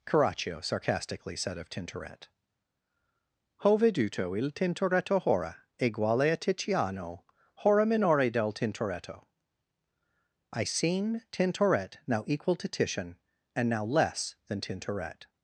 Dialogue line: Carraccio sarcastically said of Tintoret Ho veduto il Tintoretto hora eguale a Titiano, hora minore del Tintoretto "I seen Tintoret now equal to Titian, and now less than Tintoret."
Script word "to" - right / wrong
right